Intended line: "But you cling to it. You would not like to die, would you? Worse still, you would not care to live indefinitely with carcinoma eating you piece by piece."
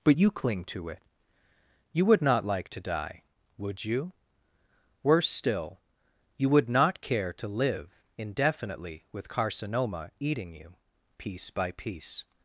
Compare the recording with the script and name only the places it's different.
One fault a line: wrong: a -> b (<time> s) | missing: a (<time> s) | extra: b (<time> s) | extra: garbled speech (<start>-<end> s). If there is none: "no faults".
no faults